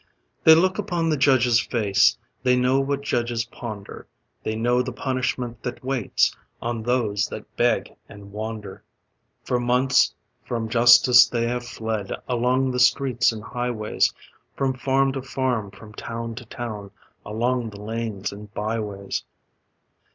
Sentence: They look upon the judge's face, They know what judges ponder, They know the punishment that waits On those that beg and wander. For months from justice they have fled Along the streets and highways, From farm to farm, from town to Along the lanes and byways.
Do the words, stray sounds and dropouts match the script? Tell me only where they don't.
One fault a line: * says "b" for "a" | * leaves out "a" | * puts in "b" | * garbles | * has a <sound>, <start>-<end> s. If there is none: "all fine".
* puts in "town"